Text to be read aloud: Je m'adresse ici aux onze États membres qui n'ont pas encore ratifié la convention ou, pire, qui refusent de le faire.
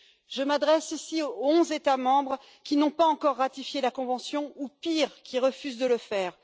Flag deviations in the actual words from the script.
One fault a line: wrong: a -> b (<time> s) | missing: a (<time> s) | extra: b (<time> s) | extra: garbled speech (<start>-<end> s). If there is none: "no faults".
no faults